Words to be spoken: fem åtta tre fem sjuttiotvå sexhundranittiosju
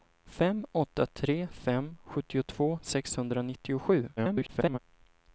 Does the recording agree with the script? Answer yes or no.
no